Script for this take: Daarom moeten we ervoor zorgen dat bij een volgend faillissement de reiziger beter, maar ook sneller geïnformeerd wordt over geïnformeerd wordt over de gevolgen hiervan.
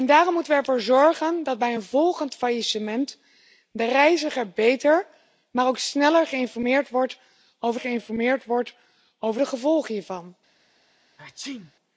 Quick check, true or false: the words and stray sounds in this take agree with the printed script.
false